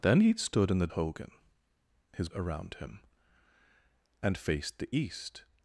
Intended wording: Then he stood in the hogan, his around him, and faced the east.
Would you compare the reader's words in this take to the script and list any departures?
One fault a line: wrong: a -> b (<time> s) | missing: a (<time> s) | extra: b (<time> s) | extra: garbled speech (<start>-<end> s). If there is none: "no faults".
no faults